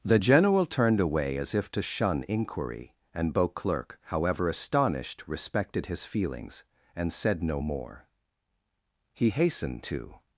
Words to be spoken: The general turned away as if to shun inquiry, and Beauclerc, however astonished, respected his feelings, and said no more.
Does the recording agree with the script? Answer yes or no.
no